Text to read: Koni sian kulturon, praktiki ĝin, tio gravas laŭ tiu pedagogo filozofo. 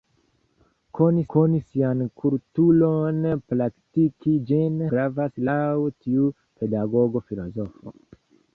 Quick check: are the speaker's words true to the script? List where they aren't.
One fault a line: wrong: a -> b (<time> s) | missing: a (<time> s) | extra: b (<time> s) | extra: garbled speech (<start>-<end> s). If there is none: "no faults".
extra: koni (1.3 s)
missing: tio (4.8 s)